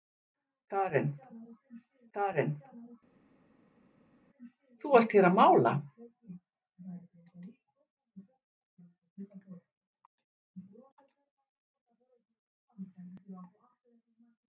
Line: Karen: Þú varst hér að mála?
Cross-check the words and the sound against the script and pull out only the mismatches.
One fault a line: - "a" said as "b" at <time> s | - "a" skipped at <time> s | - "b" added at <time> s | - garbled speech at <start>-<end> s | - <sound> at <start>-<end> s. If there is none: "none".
- "karen" added at 2.2 s